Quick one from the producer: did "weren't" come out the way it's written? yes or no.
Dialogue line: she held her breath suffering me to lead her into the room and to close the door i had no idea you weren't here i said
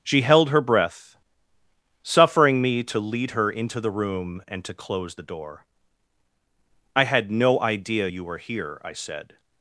no